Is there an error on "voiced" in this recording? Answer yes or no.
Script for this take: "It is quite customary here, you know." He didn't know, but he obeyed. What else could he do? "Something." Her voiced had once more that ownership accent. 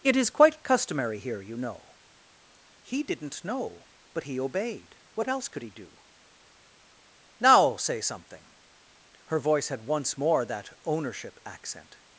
yes